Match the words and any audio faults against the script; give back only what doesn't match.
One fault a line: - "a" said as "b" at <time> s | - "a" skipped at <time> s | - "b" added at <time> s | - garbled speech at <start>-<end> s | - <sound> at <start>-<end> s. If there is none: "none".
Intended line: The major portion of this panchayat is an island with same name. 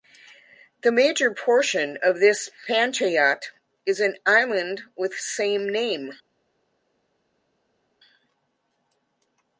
none